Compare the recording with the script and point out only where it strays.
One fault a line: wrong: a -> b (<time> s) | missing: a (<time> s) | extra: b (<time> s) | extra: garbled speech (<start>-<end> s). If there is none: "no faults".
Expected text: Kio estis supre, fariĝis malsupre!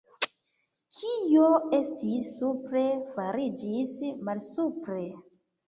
no faults